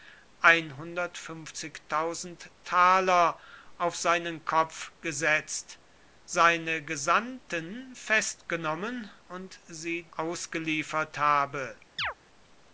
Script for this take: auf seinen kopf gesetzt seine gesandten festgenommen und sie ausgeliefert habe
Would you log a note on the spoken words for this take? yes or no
no